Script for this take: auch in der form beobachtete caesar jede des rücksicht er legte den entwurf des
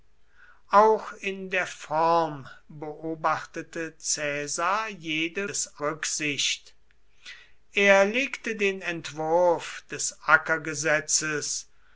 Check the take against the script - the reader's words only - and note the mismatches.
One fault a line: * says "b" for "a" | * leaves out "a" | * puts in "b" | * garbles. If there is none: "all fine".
all fine